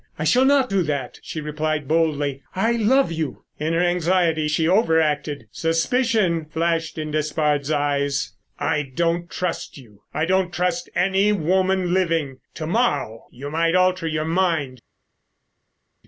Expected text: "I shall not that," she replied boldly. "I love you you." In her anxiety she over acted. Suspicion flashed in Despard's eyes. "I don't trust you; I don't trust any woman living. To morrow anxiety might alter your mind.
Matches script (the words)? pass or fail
fail